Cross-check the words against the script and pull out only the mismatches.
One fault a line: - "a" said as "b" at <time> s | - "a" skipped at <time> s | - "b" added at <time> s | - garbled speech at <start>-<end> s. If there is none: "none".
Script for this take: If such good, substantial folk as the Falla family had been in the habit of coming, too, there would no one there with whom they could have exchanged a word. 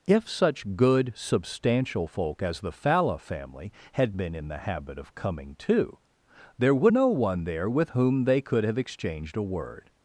none